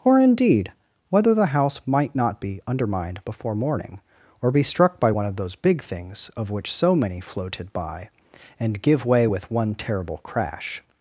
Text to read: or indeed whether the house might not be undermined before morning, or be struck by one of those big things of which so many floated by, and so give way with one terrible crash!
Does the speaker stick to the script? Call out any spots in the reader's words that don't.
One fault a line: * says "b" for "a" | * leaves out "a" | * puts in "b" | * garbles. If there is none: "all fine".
* leaves out "so"